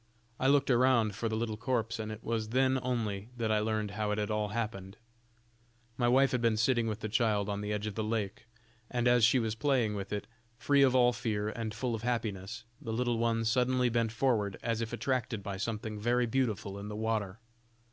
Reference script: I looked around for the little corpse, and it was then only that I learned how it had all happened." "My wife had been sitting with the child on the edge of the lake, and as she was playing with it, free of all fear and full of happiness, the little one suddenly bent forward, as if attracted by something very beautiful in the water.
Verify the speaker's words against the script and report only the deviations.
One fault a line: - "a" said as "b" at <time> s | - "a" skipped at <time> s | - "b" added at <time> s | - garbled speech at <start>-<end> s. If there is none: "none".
none